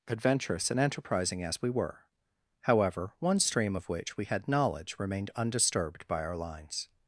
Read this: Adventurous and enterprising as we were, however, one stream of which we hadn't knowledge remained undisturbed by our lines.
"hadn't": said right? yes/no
no